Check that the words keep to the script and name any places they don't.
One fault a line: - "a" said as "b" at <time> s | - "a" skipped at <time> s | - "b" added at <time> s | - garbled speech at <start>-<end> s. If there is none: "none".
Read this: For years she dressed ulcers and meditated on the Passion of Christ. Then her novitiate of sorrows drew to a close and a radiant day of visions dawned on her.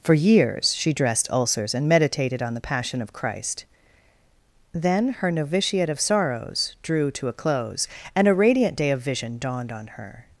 - "visions" said as "vision" at 9.0 s